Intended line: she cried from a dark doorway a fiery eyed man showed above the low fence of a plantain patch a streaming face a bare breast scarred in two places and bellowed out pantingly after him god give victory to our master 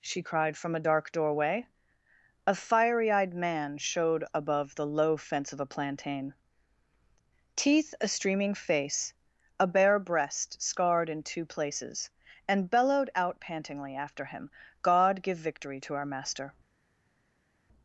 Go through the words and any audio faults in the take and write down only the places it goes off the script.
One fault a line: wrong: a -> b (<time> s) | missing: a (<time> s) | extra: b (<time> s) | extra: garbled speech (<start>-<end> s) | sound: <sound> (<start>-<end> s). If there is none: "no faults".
wrong: patch -> teeth (7.6 s)